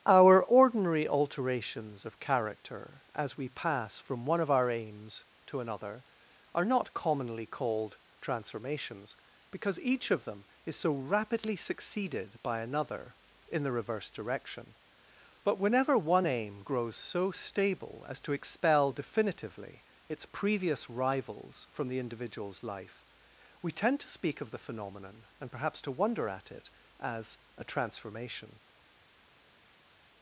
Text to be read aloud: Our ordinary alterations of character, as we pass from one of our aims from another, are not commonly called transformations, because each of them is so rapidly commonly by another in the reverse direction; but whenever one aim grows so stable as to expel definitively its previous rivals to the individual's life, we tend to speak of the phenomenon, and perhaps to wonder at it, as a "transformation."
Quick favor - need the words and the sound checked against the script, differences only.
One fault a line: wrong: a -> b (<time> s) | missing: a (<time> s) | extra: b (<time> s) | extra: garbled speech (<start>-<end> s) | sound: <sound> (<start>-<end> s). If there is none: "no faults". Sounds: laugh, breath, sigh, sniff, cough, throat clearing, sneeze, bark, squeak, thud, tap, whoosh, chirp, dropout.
wrong: from -> to (5.5 s)
wrong: commonly -> succeeded (11.6 s)
wrong: to -> from (21.7 s)